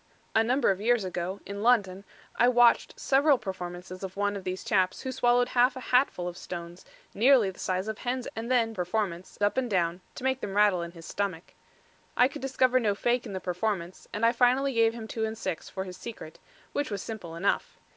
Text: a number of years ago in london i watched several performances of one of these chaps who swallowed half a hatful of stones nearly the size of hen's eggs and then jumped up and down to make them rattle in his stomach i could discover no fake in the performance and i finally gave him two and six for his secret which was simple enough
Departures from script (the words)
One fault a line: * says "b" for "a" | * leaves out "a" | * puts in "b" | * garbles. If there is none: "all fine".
* leaves out "eggs"
* says "performance" for "jumped"